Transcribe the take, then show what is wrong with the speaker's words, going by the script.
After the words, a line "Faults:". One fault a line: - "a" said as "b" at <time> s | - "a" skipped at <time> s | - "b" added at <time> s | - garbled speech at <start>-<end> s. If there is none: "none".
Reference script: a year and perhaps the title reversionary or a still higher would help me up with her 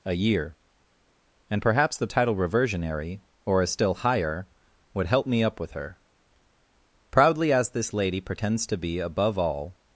a year and perhaps the title reversionary or a still higher would help me up with her proudly as this lady pretends to be above all
Faults:
- "proudly as this lady pretends to be above all" added at 7.1 s